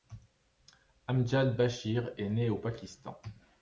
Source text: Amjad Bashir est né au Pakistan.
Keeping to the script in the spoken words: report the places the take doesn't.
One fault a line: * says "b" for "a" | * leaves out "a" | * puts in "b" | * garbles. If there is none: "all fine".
all fine